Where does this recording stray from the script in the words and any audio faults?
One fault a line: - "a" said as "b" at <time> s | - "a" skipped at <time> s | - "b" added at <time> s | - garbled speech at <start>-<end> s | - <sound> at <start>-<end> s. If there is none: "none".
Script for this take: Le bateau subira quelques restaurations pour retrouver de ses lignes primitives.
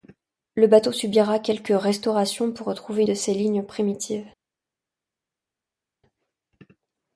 none